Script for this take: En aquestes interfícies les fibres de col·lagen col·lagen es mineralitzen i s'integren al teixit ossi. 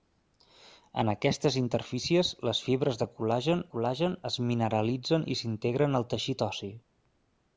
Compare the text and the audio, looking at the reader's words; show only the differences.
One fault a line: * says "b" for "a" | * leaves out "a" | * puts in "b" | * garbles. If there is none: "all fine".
all fine